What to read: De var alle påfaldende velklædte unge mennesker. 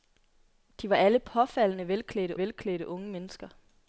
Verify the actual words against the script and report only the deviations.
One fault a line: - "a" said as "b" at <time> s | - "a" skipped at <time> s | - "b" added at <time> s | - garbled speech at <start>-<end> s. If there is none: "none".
- "velklædte" added at 2.4 s